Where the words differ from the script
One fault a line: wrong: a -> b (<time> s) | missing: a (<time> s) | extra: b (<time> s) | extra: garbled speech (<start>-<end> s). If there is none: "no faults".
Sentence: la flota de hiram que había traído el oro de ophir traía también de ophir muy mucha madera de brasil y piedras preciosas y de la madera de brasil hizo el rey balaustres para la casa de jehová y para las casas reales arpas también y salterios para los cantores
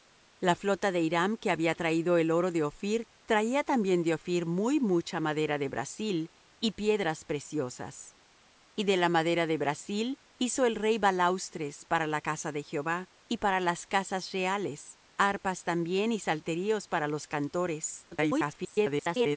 extra: garbled speech (18.1-19.4 s)